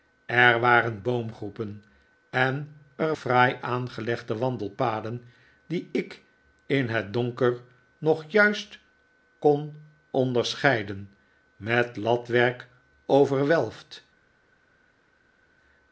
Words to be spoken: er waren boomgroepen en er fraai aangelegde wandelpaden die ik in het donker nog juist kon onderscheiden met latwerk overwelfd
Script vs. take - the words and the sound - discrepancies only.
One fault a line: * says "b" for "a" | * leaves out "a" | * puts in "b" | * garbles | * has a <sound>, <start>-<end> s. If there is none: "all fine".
all fine